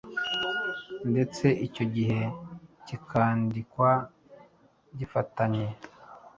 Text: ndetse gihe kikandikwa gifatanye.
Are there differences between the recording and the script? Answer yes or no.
yes